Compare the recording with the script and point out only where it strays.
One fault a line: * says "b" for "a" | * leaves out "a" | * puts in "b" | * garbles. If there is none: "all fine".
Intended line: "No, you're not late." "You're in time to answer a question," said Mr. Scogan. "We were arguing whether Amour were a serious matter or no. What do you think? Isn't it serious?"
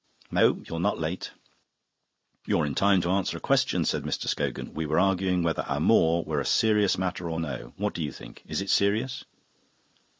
* says "Is" for "Isn't"